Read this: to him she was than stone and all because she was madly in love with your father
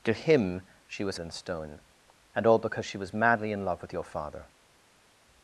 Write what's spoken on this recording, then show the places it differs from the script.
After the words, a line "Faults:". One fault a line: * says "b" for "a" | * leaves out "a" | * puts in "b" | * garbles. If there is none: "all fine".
to him she was than stone and all because she was madly in love with your father
Faults:
all fine